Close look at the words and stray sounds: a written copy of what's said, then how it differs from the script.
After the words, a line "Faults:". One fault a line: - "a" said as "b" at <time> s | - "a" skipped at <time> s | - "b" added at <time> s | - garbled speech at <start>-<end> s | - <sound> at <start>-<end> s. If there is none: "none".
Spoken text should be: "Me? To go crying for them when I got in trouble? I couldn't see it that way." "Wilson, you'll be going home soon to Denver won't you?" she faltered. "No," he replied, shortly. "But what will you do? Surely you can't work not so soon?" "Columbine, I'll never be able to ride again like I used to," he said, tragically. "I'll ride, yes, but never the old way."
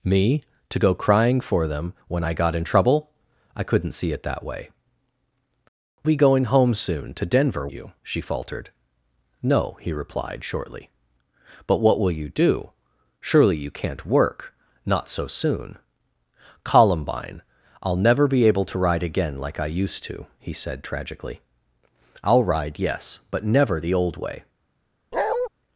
"Me? To go crying for them when I got in trouble? I couldn't see it that way." "Be going home soon to Denver you?" she faltered. "No," he replied, shortly. "But what will you do? Surely you can't work not so soon?" "Columbine, I'll never be able to ride again like I used to," he said, tragically. "I'll ride, yes, but never the old way."
Faults:
- "Wilson you'll" skipped at 4.7 s
- "won't" skipped at 7.7 s
- bark at 25.1-25.5 s